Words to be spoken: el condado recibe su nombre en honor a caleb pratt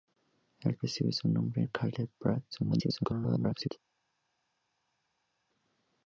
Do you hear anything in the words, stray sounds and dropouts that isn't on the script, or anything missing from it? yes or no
yes